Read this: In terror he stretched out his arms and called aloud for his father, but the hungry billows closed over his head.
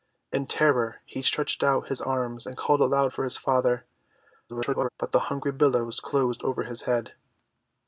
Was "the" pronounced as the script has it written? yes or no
yes